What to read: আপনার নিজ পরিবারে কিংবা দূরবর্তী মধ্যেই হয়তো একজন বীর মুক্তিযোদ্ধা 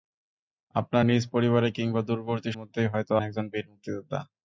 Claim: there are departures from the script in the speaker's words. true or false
false